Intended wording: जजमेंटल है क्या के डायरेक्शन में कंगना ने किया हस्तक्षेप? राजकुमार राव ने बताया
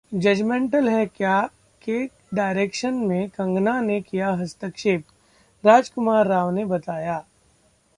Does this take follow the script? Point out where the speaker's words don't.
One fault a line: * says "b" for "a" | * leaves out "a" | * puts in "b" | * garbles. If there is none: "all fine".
all fine